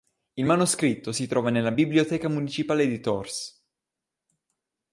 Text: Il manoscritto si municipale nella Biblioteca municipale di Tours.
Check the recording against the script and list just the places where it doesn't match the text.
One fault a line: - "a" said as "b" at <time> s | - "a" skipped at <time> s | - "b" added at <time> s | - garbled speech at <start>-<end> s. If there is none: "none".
- "municipale" said as "trova" at 1.3 s